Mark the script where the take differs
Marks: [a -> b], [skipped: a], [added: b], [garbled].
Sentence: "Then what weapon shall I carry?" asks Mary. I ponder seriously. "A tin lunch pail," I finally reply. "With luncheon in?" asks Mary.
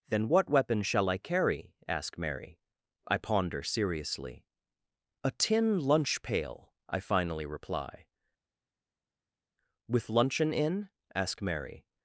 "Then what weapon shall I carry?" [asks -> ask] Mary. I ponder seriously. "A tin lunch pail," I finally reply. "With luncheon in?" [asks -> ask] Mary.